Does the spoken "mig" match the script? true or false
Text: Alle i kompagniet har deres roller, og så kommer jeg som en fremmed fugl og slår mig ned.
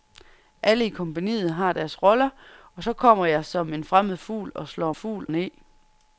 false